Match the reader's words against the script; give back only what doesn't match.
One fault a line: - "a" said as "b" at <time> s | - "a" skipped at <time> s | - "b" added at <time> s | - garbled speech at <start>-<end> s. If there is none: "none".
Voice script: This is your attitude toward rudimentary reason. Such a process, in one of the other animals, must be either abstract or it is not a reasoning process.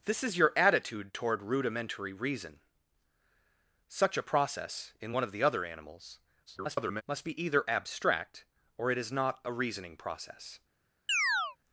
- garbled speech at 6.5-7.0 s